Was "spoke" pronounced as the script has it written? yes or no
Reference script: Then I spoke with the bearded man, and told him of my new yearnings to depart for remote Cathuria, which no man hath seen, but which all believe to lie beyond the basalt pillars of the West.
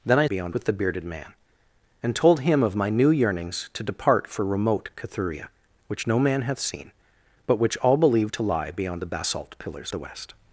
no